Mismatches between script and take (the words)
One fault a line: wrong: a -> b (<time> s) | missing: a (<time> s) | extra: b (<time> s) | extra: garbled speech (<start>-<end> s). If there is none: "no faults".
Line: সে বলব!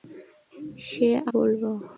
no faults